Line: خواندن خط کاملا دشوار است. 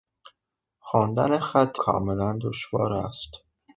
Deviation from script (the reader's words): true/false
false